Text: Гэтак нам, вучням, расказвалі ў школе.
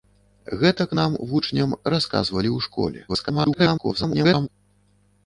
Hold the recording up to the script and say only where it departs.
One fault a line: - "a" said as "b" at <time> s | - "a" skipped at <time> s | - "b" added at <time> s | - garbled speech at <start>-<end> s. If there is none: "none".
- garbled speech at 3.1-4.5 s